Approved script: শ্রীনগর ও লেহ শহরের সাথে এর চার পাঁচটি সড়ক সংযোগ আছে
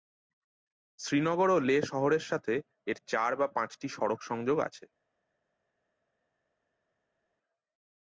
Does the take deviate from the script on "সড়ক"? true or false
false